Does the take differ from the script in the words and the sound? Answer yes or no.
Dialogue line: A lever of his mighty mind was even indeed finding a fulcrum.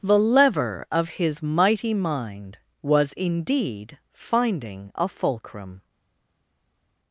yes